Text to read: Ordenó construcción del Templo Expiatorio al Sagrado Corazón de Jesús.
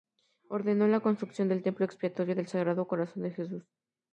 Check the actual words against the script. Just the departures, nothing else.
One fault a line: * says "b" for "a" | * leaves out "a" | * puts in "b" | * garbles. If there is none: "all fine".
* puts in "la"
* says "del" for "al"